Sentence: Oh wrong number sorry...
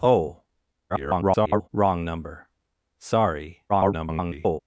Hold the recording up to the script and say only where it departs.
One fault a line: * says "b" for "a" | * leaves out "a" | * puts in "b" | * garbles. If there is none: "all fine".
* garbles
* garbles